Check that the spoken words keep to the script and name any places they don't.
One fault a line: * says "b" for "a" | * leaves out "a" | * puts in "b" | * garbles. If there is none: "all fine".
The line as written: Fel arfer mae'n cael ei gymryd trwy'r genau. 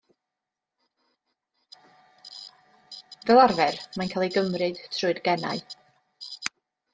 all fine